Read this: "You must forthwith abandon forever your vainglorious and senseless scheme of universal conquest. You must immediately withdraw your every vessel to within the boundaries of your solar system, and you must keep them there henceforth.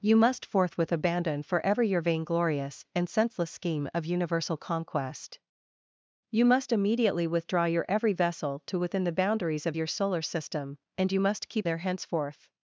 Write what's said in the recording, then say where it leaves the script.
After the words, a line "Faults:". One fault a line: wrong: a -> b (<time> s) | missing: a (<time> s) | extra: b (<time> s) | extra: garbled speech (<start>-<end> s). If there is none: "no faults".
"You must forthwith abandon forever your vainglorious and senseless scheme of universal conquest. You must immediately withdraw your every vessel to within the boundaries of your solar system, and you must keep there henceforth.
Faults:
missing: them (11.7 s)